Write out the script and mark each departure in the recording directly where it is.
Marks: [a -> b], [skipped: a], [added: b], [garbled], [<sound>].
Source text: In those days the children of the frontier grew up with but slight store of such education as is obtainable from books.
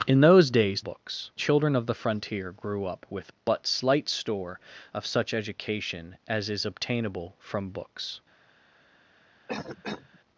In those days [the -> books] children of the frontier grew up with but slight store of such education as is obtainable from books. [cough]